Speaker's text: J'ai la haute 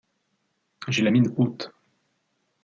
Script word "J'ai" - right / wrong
right